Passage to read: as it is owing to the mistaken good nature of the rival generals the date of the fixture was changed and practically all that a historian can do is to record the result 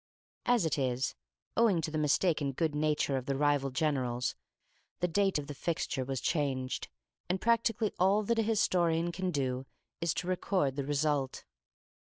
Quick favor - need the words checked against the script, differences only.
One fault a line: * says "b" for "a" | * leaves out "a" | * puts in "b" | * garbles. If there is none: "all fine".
all fine